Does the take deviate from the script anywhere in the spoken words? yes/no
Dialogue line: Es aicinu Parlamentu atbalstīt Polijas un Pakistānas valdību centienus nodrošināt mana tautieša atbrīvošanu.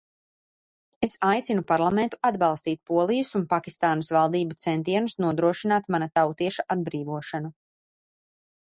no